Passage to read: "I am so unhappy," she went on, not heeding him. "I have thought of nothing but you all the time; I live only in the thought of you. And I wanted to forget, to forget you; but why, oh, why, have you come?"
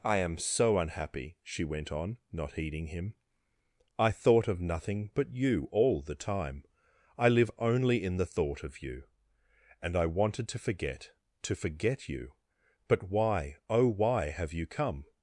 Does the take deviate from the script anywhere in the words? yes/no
yes